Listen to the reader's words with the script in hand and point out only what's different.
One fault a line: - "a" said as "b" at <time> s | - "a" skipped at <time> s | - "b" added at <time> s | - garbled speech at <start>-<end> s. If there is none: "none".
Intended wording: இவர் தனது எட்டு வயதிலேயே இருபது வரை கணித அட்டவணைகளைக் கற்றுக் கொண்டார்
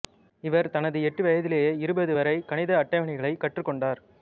none